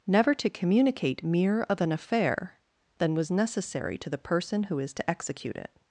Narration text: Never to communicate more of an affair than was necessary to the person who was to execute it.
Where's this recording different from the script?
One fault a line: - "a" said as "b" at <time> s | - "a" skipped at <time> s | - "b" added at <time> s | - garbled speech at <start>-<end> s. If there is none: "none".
- "more" said as "mere" at 1.2 s
- "was" said as "is" at 4.8 s